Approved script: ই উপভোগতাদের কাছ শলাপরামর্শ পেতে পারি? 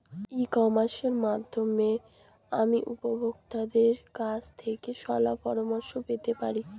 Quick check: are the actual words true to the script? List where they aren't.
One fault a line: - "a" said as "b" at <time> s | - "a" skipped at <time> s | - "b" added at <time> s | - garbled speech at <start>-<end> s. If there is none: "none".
- "কমার্সের মাধ্যমে আমি" added at 0.5 s
- "থেকে" added at 4.6 s